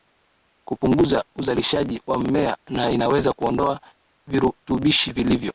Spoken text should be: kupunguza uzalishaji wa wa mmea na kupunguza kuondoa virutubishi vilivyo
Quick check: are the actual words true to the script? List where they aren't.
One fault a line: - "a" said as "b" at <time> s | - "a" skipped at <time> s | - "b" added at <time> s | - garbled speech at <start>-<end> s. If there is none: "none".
- "wa" skipped at 2.2 s
- "kupunguza" said as "inaweza" at 2.9 s